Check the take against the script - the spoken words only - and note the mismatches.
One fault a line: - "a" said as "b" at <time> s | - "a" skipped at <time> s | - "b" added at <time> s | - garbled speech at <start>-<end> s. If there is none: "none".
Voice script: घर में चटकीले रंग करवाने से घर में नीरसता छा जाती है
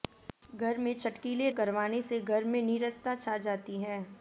- "रंग" skipped at 1.5 s